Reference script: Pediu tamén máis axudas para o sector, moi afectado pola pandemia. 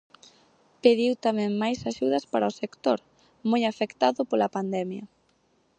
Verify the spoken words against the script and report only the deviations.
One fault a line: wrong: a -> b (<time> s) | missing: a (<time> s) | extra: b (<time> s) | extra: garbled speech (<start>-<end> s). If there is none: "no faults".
no faults